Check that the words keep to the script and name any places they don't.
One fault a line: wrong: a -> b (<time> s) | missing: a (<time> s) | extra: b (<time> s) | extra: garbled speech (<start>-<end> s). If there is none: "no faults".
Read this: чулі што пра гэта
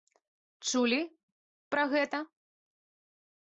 missing: што (1.0 s)